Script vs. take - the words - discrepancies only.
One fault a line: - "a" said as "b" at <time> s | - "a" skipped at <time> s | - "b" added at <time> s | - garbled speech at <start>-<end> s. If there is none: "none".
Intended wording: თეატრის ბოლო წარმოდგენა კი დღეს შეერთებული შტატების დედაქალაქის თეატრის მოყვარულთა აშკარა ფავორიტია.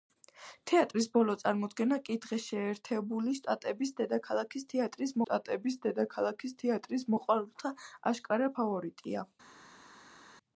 - "შტატების დედაქალაქის თეატრის" added at 5.2 s